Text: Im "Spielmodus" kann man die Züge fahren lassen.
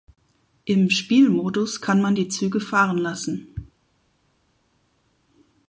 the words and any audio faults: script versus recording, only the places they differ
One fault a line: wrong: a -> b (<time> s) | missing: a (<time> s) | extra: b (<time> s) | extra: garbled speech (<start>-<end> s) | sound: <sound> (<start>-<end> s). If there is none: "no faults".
no faults